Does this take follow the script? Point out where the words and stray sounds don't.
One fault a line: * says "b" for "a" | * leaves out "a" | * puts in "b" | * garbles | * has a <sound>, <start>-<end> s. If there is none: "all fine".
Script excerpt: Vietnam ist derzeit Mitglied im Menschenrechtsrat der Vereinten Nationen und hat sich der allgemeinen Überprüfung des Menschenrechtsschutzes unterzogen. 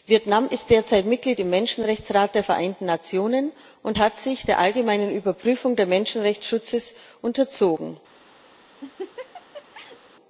* has a laugh, 8.8-10.0 s